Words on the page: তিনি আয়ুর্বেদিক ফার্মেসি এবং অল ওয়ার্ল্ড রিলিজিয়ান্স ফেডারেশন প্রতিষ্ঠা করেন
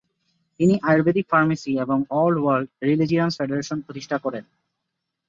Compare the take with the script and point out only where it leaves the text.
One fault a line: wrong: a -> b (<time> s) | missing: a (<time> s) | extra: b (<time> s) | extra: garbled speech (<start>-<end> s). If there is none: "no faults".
no faults